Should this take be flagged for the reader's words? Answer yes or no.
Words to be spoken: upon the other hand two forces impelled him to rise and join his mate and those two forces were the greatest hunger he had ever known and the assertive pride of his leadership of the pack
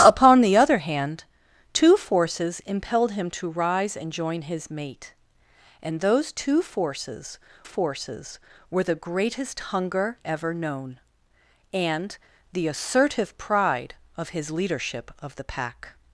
yes